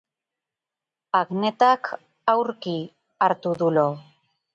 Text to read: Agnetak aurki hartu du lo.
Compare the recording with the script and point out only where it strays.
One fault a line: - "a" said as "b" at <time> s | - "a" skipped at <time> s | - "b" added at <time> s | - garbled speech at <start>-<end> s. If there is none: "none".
none